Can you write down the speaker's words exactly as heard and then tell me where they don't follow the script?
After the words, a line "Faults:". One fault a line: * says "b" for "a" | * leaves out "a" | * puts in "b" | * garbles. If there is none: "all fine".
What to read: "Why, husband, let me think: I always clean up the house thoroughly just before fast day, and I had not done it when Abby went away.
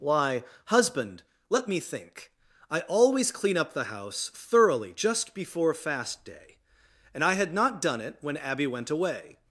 "Why, husband, let me think: I always clean up the house thoroughly just before fast day, and I had not done it when Abby went away.
Faults:
all fine